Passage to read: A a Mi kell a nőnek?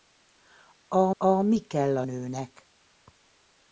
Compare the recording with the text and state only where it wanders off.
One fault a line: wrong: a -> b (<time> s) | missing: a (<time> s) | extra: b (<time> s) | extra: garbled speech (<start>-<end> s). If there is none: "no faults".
no faults